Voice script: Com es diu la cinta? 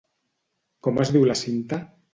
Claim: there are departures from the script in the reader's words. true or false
false